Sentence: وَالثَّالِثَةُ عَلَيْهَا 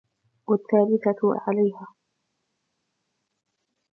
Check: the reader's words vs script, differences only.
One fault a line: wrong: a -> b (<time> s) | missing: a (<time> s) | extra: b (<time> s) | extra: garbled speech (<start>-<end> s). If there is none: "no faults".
no faults